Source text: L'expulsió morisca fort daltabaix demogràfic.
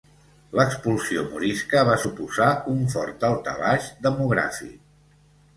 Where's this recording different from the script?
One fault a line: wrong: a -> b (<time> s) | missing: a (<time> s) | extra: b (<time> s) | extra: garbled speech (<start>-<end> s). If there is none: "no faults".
extra: va suposar un (1.9 s)